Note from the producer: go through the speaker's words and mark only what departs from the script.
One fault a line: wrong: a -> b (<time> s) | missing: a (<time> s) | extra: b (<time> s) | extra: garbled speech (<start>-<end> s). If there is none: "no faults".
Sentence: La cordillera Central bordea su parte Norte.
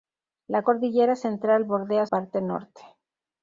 missing: su (2.1 s)